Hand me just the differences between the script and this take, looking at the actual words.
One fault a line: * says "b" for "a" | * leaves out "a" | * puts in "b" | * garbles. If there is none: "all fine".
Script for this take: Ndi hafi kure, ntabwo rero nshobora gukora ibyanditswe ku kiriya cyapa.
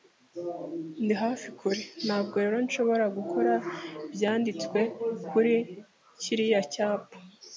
* says "kuri" for "ku"